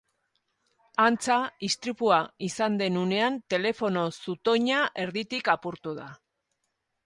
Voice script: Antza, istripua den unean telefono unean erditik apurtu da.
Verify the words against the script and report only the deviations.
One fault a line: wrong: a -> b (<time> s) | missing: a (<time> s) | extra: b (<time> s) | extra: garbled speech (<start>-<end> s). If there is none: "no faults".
extra: izan (2.5 s)
wrong: unean -> zutoina (4.2 s)